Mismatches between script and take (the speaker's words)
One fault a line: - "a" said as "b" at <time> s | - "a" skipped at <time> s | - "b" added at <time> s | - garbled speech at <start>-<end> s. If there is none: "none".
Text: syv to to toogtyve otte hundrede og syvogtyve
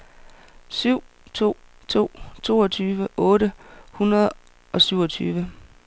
none